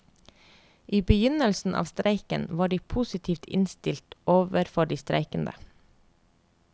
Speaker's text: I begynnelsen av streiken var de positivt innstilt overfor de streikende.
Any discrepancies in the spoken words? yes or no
no